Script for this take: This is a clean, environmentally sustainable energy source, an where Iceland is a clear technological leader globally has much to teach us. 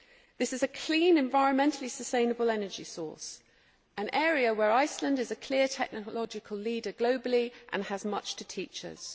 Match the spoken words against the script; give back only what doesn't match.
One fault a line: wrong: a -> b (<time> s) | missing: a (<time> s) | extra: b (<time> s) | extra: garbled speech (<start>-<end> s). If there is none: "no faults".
extra: area (4.1 s)
extra: and (7.7 s)